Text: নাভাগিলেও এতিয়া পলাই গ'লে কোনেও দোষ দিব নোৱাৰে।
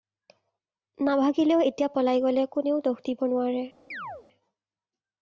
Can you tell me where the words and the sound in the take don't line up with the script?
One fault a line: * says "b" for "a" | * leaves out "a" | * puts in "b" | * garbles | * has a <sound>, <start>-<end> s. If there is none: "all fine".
* has a chirp, 3.9-4.3 s